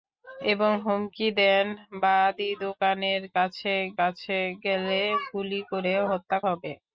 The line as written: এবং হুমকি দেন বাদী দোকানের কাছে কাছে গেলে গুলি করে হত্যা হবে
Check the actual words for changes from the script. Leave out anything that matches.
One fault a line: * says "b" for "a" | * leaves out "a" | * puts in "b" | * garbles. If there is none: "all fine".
all fine